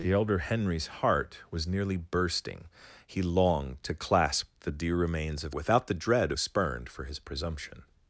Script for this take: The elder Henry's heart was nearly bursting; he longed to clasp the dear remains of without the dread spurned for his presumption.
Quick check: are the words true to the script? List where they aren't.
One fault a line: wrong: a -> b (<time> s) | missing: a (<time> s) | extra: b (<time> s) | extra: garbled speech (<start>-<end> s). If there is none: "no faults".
no faults